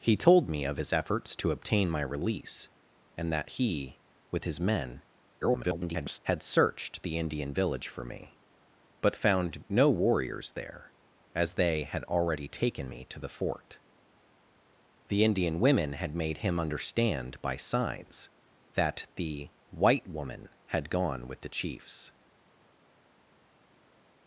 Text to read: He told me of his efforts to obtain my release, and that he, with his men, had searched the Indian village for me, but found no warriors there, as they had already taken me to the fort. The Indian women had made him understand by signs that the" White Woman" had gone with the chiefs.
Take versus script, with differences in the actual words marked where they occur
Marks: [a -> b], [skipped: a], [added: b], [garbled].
He told me of his efforts to obtain my release, and that he, with his men, [garbled] had searched the Indian village for me, but found no warriors there, as they had already taken me to the fort. The Indian women had made him understand by signs that the" White Woman" had gone with the chiefs.